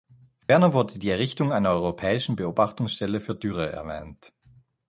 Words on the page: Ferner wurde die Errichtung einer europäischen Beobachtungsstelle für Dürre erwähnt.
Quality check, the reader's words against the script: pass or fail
pass